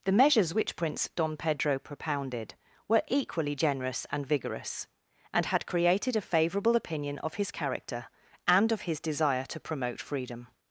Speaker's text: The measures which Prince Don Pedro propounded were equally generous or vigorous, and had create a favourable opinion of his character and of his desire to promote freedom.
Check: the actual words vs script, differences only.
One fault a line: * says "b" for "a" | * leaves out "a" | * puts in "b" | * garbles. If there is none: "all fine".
* says "and" for "or"
* says "created" for "create"